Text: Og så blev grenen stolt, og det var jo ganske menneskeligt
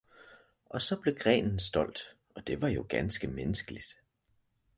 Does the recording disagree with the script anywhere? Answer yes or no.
no